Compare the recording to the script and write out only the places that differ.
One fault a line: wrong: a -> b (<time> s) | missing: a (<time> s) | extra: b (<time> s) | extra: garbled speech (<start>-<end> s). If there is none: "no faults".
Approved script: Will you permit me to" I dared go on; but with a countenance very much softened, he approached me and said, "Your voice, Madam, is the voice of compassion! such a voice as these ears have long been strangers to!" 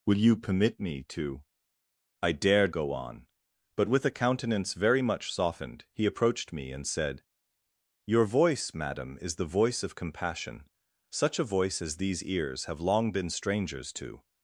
no faults